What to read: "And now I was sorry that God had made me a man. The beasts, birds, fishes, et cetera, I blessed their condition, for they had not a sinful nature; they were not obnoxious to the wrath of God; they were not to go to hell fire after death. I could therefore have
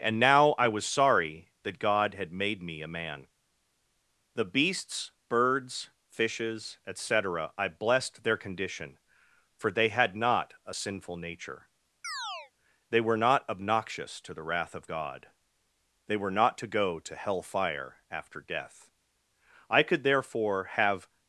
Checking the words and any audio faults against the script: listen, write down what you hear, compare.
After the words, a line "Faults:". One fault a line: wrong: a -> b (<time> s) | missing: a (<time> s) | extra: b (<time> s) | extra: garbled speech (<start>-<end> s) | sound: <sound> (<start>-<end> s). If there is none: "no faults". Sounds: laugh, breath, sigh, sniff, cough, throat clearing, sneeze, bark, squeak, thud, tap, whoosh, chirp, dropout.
"And now I was sorry that God had made me a man. The beasts, birds, fishes, et cetera, I blessed their condition, for they had not a sinful nature; they were not obnoxious to the wrath of God; they were not to go to hell fire after death. I could therefore have
Faults:
sound: chirp (12.0-12.5 s)